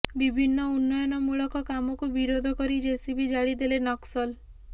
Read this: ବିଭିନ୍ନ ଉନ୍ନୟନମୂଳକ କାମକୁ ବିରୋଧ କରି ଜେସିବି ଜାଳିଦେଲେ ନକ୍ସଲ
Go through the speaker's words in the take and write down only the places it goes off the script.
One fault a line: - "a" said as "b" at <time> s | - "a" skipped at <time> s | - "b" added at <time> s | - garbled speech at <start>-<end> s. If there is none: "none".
none